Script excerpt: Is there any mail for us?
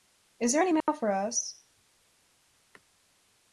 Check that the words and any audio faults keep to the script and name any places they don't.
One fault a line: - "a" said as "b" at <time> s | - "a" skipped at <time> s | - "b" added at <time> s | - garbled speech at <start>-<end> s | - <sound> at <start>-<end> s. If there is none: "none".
- dropout at 0.8-0.9 s